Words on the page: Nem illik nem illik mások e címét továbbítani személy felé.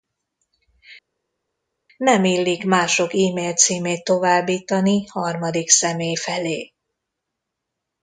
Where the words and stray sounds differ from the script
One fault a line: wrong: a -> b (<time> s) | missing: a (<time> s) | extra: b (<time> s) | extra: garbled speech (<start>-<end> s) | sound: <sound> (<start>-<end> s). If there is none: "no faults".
missing: nem illik (2.6 s)
extra: mail (3.3 s)
extra: harmadik (5.1 s)